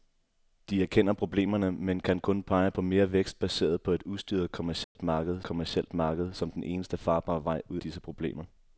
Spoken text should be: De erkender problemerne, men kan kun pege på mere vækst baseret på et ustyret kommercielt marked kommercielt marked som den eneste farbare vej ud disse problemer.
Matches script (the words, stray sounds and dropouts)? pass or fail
fail